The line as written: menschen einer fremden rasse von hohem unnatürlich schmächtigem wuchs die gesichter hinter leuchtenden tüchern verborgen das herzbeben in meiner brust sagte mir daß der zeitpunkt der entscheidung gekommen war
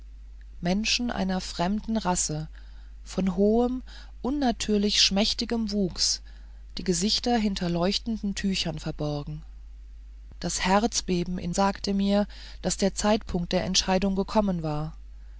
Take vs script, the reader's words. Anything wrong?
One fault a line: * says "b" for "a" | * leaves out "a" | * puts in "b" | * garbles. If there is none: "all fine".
* leaves out "meiner brust"